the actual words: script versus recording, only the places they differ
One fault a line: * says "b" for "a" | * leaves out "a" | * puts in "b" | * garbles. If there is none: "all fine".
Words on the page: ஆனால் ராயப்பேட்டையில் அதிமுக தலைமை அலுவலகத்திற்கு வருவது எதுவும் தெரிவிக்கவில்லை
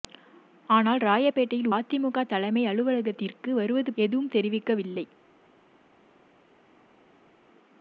all fine